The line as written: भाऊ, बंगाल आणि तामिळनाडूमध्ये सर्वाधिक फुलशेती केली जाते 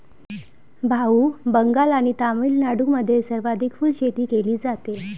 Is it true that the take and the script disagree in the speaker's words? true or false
false